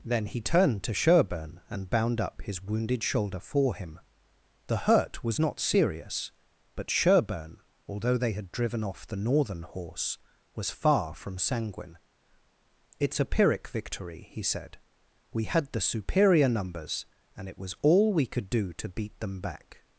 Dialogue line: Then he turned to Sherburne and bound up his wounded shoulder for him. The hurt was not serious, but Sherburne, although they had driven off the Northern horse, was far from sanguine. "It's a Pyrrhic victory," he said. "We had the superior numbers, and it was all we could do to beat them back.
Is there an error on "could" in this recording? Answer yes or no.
no